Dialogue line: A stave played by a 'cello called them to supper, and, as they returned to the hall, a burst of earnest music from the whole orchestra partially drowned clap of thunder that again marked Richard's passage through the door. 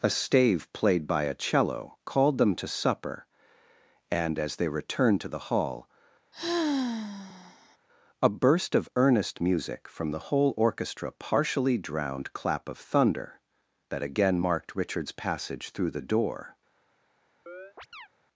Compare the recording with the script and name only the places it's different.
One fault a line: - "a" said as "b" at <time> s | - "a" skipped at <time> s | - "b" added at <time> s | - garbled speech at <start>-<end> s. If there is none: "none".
none